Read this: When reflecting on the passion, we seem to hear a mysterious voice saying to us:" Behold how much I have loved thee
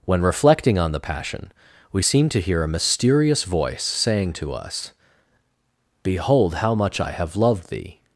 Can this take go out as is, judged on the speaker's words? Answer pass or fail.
pass